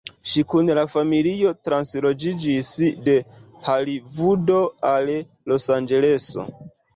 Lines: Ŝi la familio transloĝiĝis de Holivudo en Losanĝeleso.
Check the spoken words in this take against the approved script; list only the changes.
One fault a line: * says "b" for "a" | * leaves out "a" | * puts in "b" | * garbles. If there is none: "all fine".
* puts in "kun"
* says "al" for "en"